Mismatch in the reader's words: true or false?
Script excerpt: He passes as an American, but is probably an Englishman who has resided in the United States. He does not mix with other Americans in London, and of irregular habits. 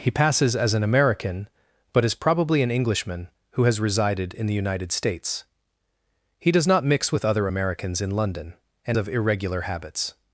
false